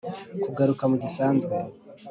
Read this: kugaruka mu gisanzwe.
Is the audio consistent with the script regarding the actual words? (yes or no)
yes